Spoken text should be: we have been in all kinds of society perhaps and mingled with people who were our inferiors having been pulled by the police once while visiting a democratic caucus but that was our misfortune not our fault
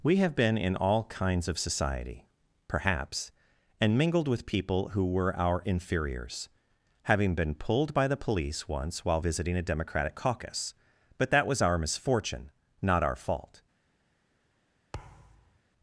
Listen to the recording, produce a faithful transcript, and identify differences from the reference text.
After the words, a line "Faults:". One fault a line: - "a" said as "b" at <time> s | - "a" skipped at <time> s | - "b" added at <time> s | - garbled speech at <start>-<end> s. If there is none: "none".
we have been in all kinds of society perhaps and mingled with people who were our inferiors having been pulled by the police once while visiting a democratic caucus but that was our misfortune not our fault
Faults:
none